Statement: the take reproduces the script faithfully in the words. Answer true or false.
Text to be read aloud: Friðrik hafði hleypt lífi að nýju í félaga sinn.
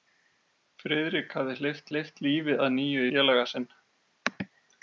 false